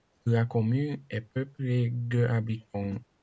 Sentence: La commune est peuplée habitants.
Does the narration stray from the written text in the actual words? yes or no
yes